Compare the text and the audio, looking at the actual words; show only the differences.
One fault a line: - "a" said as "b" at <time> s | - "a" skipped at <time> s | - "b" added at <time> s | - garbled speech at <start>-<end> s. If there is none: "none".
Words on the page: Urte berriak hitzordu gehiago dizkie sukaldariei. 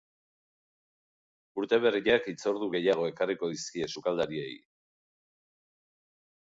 - "ekarriko" added at 3.1 s